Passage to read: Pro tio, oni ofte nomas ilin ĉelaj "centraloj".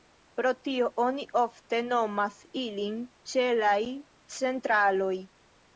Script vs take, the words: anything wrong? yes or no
no